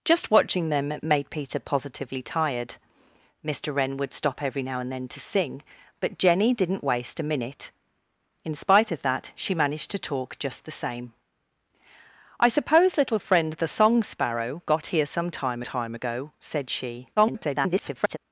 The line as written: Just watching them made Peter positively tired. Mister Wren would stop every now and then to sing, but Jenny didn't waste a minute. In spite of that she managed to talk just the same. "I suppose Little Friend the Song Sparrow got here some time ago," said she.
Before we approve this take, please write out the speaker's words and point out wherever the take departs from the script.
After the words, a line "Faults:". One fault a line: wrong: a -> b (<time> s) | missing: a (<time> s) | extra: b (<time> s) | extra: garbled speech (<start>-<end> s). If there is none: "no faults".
Just watching them made Peter positively tired. Mister Wren would stop every now and then to sing, but Jenny didn't waste a minute. In spite of that she managed to talk just the same. "I suppose Little Friend the Song Sparrow got here some time time ago," said she. [garbled]
Faults:
extra: time (15.6 s)
extra: garbled speech (17.2-18.2 s)